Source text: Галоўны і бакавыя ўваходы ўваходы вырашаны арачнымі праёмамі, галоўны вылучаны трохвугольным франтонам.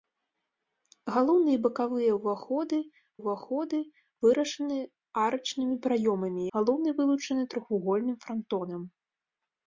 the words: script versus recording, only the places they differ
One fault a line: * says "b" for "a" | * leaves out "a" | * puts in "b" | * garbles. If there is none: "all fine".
all fine